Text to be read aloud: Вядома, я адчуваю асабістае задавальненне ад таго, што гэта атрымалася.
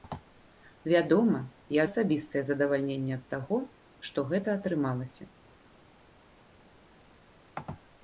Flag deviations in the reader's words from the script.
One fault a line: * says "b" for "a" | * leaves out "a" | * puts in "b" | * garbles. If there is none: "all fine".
* leaves out "адчуваю"